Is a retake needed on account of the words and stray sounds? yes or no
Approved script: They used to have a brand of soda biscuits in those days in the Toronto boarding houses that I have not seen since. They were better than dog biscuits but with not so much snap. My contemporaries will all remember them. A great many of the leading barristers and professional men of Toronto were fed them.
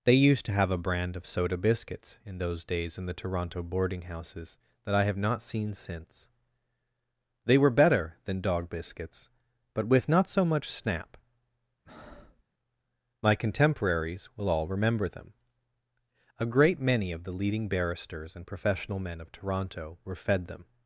yes